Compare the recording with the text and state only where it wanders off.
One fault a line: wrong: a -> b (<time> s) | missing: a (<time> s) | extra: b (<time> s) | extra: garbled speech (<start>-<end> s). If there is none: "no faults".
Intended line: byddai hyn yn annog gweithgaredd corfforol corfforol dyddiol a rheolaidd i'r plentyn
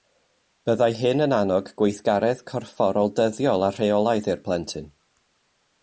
missing: corfforol (3.1 s)